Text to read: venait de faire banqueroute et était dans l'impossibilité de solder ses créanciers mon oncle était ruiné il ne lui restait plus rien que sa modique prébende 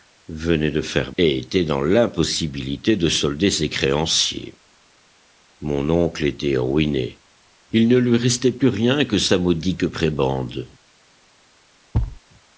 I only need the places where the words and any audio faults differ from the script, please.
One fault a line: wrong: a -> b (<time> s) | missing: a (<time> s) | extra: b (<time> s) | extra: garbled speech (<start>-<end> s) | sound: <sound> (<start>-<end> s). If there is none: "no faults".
missing: banqueroute (1.1 s)
sound: thud (11.9-12.2 s)